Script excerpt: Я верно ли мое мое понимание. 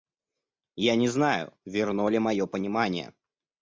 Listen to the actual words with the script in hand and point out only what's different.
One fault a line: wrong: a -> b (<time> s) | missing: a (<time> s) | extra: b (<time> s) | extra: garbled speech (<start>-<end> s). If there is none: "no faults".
extra: не знаю (0.9 s)
missing: мое (2.5 s)